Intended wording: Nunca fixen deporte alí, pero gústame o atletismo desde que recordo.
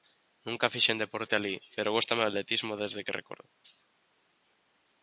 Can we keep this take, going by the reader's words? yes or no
yes